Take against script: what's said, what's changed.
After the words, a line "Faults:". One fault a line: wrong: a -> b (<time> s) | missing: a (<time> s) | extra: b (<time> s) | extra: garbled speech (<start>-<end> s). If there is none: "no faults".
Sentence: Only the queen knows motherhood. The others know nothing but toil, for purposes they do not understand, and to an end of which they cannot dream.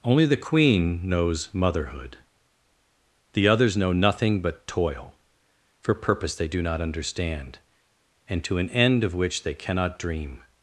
Only the queen knows motherhood. The others know nothing but toil, for purpose they do not understand, and to an end of which they cannot dream.
Faults:
wrong: purposes -> purpose (5.9 s)